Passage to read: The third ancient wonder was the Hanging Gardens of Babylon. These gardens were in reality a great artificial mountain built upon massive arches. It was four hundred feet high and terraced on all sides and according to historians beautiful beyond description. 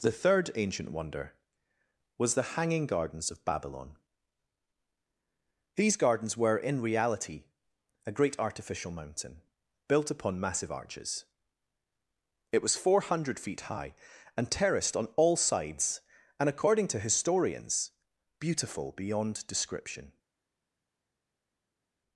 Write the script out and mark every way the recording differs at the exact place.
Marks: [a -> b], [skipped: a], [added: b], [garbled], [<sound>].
The third ancient wonder was the Hanging Gardens of Babylon. These gardens were in reality a great artificial mountain built upon massive arches. It was four hundred feet high and terraced on all sides and according to historians beautiful beyond description.